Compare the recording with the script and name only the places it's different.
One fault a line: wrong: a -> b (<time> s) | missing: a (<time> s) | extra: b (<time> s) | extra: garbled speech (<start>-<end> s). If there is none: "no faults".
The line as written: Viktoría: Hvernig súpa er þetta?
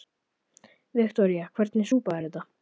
no faults